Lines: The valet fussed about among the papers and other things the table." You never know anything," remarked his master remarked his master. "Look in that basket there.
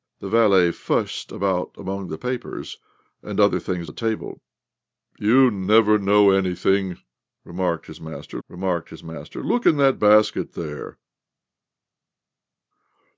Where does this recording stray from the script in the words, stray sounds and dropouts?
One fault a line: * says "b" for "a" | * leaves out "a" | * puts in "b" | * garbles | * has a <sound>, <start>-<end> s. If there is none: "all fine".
all fine